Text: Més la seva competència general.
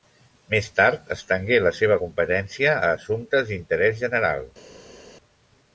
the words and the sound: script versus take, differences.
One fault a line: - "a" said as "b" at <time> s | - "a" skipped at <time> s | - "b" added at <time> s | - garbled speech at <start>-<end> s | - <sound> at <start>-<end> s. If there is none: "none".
- "tard estengué" added at 0.8 s
- "a assumptes d'interès" added at 2.8 s